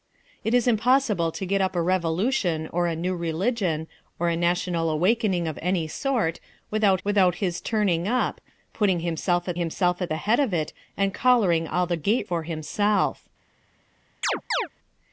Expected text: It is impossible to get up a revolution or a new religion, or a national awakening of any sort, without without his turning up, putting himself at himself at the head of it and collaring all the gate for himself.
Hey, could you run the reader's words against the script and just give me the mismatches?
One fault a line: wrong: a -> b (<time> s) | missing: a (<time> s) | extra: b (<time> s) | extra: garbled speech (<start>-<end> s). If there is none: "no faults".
no faults